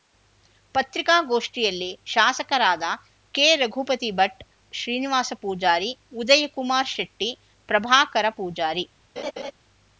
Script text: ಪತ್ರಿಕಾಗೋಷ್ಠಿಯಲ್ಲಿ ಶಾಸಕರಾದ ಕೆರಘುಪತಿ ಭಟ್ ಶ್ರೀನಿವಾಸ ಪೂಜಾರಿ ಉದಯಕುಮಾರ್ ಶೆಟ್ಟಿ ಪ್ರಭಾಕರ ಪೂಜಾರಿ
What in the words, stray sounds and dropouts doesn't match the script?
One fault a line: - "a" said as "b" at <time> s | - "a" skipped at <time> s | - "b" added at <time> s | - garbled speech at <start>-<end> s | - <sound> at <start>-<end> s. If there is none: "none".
- laugh at 9.2-9.5 s